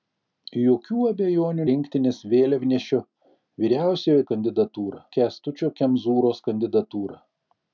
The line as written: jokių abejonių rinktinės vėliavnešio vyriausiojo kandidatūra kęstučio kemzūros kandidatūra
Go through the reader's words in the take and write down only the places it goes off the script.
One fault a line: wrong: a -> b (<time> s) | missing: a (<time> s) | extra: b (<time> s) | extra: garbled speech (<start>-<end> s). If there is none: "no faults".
no faults